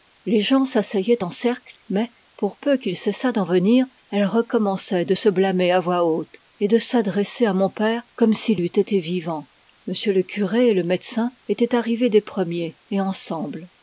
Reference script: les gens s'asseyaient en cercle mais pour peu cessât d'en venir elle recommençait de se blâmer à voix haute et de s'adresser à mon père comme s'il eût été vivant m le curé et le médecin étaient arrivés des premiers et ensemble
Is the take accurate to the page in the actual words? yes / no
no